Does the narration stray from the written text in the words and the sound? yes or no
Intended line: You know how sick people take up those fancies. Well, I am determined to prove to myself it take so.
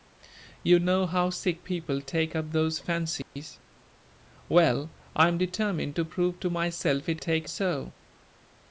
yes